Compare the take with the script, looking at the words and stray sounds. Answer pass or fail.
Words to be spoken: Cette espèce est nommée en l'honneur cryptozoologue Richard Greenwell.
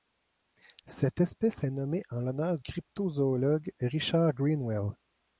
pass